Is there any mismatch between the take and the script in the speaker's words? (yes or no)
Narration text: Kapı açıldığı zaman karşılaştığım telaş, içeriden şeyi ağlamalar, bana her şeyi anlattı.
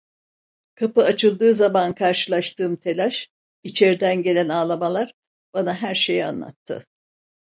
yes